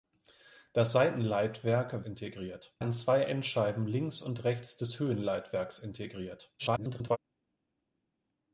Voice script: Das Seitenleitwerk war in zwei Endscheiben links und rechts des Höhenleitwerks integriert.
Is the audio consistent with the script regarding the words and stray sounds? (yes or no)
no